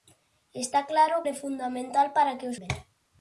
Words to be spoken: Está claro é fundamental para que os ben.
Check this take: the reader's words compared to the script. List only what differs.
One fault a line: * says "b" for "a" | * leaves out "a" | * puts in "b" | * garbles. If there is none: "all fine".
all fine